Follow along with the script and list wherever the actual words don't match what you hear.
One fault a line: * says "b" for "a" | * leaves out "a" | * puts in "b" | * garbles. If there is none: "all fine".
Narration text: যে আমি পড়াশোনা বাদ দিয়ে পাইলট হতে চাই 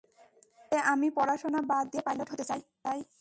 all fine